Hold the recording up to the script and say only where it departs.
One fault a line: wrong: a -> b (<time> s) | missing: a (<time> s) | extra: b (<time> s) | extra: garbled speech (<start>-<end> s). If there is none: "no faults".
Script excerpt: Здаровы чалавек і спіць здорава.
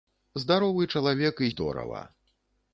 missing: спіць (1.5 s)